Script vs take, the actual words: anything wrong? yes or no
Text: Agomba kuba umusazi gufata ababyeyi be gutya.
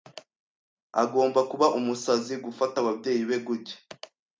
no